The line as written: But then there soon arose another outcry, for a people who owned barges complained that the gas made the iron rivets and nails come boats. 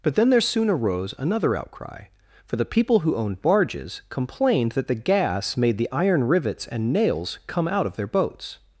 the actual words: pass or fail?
fail